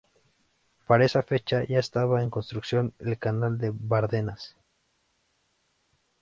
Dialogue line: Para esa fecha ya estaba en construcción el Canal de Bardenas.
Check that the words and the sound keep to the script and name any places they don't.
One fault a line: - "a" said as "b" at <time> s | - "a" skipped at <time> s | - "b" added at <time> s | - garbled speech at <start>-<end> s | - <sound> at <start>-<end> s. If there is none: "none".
none